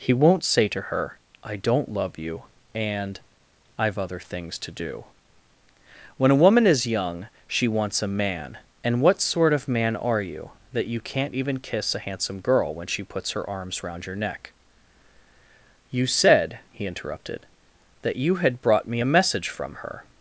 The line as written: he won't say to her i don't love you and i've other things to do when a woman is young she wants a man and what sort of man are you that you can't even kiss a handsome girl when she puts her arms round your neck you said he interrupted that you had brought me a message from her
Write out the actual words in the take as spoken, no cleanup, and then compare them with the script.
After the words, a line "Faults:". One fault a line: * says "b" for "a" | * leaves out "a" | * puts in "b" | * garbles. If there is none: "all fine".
he won't say to her i don't love you and i've other things to do when a woman is young she wants a man and what sort of man are you that you can't even kiss a handsome girl when she puts her arms round your neck you said he interrupted that you had brought me a message from her
Faults:
all fine